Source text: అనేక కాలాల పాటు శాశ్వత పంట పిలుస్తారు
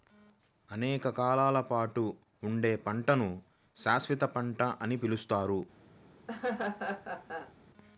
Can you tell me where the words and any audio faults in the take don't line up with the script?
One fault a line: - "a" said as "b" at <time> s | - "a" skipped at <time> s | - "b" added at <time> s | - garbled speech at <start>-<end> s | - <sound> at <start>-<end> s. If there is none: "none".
- "ఉండే పంటను" added at 2.4 s
- "అని" added at 4.8 s
- laugh at 6.3-7.5 s